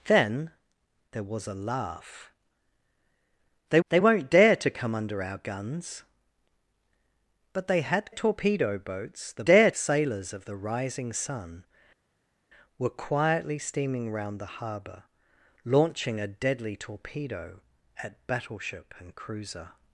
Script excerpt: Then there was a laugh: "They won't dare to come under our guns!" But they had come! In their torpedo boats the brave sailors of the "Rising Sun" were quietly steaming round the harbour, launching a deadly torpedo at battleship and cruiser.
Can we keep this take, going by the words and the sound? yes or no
no